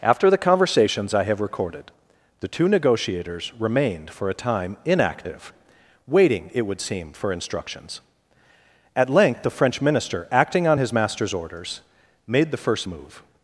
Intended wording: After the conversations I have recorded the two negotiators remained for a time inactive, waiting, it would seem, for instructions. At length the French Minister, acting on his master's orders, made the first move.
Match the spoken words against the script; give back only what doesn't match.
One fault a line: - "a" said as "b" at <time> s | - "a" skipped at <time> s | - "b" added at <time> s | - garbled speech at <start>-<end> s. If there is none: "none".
none